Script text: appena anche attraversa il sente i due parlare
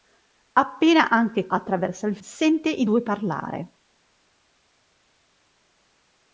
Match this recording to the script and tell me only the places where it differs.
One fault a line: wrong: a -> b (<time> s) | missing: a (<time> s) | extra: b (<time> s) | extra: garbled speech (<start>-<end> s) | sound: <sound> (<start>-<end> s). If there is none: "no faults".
no faults